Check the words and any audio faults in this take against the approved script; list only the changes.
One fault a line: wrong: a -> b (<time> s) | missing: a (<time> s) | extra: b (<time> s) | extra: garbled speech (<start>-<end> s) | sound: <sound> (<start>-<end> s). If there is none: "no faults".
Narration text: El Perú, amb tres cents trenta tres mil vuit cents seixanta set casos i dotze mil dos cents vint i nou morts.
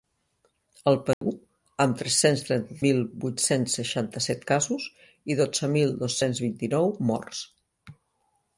sound: dropout (1.1-1.2 s)
missing: tres (2.8 s)